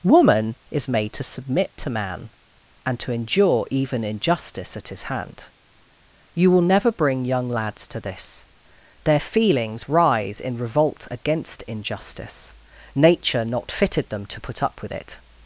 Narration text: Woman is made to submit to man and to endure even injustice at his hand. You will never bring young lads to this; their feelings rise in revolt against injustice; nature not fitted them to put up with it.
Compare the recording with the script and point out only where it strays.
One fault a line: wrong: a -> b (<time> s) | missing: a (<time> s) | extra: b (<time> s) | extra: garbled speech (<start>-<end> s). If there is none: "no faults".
no faults